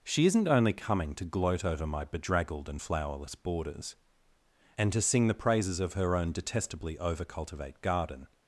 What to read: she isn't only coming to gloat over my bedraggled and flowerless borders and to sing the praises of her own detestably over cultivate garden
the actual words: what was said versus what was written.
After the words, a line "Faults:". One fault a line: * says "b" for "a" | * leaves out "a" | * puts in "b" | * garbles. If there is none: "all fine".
she isn't only coming to gloat over my bedraggled and flowerless borders and to sing the praises of her own detestably over cultivate garden
Faults:
all fine